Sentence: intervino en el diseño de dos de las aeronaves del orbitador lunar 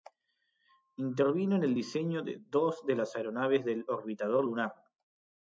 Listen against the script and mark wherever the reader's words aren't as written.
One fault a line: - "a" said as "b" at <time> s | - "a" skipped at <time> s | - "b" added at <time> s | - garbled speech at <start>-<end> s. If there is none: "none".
none